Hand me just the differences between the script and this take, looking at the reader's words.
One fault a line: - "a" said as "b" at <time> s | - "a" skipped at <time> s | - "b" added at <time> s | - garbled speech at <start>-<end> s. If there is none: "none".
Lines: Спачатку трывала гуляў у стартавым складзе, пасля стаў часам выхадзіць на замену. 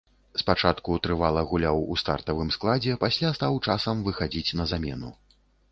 none